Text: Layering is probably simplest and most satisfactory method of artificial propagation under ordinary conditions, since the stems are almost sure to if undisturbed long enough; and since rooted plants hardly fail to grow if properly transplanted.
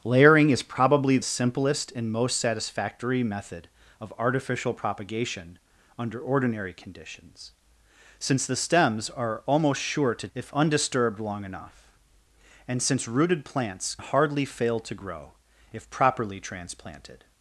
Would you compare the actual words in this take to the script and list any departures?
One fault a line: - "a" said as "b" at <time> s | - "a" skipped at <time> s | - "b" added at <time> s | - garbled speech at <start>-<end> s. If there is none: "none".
none